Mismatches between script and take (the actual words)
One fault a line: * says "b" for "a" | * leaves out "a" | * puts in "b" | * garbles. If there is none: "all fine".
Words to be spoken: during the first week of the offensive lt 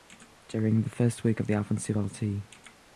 all fine